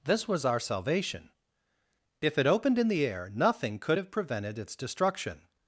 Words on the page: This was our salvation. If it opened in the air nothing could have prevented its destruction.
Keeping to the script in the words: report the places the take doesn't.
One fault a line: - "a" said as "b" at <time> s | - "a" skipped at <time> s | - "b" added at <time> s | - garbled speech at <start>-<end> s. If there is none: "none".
none